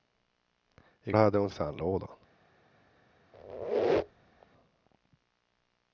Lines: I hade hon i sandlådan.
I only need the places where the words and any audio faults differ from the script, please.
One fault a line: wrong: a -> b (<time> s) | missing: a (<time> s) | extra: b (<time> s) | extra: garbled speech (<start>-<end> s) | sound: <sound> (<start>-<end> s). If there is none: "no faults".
sound: squeak (3.3-4.5 s)